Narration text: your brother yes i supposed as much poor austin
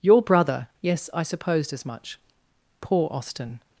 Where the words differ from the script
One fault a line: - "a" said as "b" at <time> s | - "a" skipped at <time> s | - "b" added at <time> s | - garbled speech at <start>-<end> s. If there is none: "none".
none